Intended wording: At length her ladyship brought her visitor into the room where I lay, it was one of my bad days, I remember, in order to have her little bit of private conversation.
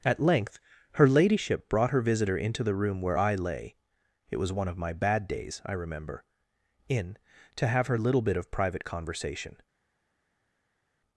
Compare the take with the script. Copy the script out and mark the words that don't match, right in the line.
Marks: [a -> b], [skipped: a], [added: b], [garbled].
At length her ladyship brought her visitor into the room where I lay, it was one of my bad days, I remember, in [skipped: order] to have her little bit of private conversation.